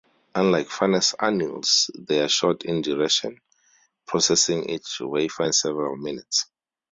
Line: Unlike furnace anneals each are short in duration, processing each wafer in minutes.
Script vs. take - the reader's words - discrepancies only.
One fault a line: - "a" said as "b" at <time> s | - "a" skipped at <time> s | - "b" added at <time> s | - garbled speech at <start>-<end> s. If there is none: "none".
- "each" said as "they" at 2.0 s
- "several" added at 5.5 s